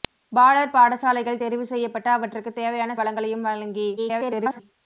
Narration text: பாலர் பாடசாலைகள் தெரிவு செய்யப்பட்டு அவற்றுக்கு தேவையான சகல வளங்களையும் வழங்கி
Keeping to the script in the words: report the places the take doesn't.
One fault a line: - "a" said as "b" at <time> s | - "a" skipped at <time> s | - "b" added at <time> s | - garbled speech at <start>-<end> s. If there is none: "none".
- "சகல" skipped at 3.0 s
- garbled speech at 4.0-4.6 s